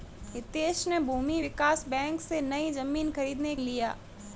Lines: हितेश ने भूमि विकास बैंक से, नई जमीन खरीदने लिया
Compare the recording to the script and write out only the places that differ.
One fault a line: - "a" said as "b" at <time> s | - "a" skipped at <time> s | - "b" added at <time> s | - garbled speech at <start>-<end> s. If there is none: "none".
none